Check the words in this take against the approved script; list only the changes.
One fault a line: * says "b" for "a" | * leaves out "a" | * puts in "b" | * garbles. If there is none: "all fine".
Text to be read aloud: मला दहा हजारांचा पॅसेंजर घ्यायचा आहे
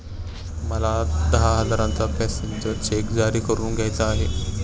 * puts in "चेक जारी करून"